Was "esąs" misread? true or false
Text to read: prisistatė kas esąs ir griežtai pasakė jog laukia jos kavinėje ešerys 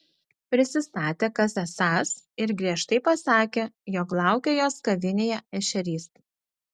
false